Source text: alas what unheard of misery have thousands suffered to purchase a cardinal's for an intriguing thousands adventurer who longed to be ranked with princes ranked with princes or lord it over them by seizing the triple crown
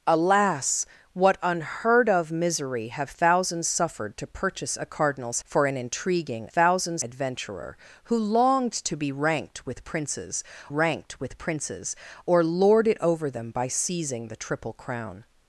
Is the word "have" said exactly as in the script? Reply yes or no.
yes